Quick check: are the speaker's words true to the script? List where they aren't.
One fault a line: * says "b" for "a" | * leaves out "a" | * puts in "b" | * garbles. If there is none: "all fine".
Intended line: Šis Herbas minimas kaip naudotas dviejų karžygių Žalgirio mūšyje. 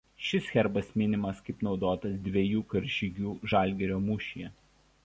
all fine